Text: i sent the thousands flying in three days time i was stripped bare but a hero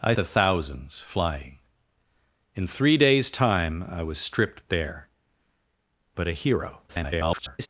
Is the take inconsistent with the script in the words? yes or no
yes